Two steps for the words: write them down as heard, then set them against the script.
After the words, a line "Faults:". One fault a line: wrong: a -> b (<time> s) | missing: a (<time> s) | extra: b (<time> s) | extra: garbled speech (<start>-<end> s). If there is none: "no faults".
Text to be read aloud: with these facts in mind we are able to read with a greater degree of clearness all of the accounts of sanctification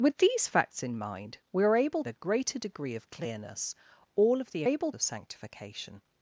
with these facts in mind we are able a greater degree of clearness all of the able of sanctification
Faults:
missing: to read with (2.0 s)
wrong: accounts -> able (4.6 s)